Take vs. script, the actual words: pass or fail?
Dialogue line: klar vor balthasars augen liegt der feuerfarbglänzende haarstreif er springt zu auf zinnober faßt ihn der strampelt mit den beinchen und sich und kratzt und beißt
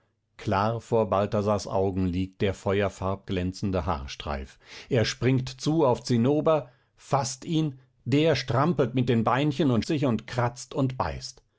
pass